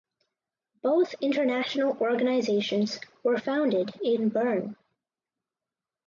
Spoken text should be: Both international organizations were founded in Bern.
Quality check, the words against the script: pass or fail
pass